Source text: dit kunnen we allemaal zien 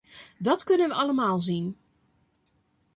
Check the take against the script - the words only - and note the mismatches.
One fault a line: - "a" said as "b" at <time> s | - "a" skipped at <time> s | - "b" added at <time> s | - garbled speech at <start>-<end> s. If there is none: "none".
- "dit" said as "dat" at 0.4 s